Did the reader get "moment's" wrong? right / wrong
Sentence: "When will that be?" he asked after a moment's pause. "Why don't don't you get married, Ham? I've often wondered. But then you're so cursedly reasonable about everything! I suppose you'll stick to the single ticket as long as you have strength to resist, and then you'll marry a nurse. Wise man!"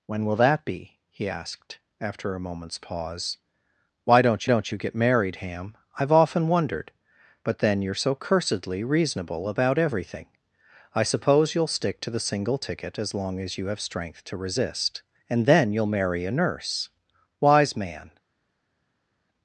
right